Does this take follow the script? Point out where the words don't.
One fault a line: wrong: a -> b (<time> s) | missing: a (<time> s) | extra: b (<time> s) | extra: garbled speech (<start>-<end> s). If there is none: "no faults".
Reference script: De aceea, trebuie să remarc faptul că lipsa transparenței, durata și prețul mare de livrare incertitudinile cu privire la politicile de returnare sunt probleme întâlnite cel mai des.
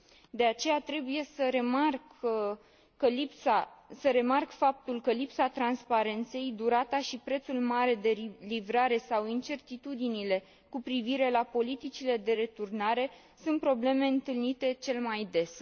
extra: sau (9.0 s)